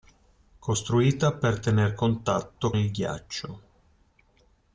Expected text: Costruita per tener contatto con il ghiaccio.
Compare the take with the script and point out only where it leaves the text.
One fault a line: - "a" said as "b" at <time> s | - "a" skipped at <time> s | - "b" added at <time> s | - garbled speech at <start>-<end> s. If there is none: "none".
- "con" skipped at 2.7 s